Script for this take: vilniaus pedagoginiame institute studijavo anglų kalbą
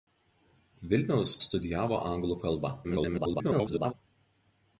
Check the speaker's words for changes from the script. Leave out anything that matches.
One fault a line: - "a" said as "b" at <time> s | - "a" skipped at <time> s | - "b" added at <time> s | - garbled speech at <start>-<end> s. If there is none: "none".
- "pedagoginiame institute" skipped at 1.3 s
- garbled speech at 2.8-3.9 s